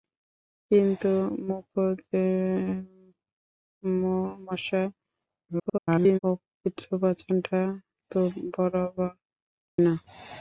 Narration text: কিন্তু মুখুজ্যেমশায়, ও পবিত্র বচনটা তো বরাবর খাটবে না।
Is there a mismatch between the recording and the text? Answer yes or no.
yes